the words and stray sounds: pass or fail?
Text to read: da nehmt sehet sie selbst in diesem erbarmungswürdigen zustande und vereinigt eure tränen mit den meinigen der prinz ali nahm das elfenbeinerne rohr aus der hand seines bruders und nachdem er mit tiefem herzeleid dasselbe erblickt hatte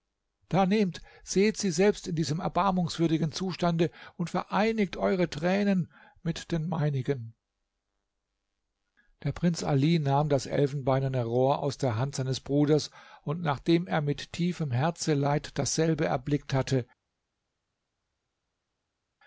pass